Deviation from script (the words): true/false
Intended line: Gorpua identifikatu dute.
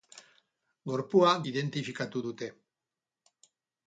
false